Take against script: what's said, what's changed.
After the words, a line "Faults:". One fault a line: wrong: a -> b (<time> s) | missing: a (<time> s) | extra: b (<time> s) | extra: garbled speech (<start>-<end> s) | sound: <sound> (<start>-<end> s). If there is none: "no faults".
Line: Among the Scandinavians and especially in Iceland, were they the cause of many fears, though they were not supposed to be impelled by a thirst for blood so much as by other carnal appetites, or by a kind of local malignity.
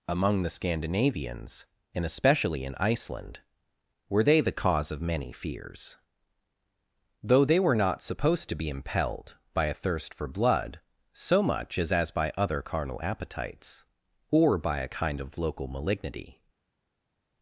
Among the Scandinavians and especially in Iceland, were they the cause of many fears, though they were not supposed to be impelled by a thirst for blood so much as as by other carnal appetites, or by a kind of local malignity.
Faults:
extra: as (11.9 s)